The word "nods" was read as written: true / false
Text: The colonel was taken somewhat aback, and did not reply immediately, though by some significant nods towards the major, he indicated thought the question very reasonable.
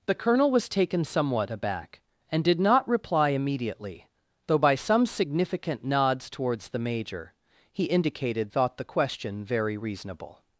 true